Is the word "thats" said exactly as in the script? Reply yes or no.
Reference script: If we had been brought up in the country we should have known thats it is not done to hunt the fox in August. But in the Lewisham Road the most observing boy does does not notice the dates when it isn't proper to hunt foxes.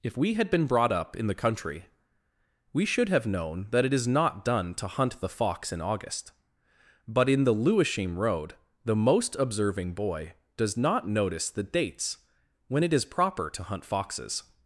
no